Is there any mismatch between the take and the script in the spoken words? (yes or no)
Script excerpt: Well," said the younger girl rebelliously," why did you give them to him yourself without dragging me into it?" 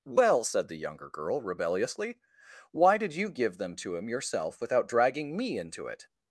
no